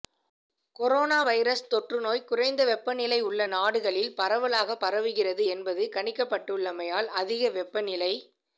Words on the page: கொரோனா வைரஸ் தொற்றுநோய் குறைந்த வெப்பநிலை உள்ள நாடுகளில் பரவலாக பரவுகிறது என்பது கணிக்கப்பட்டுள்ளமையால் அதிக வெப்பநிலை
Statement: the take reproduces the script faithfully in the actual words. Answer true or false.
true